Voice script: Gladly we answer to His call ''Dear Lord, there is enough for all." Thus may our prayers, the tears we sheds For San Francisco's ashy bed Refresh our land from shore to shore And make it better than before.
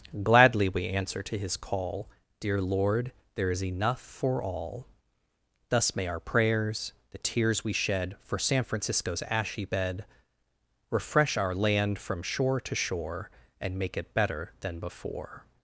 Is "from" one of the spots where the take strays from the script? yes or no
no